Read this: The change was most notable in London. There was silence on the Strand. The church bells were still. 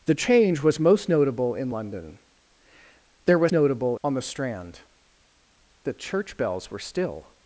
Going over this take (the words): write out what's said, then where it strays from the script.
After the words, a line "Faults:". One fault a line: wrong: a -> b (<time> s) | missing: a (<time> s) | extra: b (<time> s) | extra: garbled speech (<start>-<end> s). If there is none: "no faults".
The change was most notable in London. There was notable on the Strand. The church bells were still.
Faults:
wrong: silence -> notable (3.5 s)